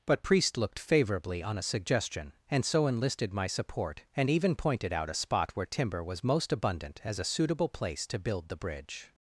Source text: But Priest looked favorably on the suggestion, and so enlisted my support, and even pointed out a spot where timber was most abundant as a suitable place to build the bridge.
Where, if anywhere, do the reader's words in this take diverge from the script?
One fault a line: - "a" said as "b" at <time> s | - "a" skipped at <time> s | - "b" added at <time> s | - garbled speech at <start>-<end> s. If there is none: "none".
- "the" said as "a" at 1.6 s